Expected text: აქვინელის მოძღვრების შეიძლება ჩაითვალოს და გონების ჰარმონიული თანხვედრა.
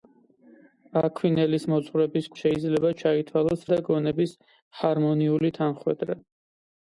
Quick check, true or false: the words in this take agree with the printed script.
true